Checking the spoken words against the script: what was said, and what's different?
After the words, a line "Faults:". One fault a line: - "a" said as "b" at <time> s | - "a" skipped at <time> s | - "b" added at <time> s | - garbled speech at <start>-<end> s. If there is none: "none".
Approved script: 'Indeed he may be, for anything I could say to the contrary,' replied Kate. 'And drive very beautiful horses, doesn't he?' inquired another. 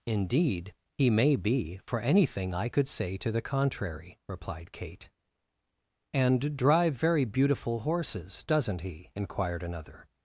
'Indeed he may be, for anything I could say to the contrary,' replied Kate. 'And drive very beautiful horses, doesn't he?' inquired another.
Faults:
none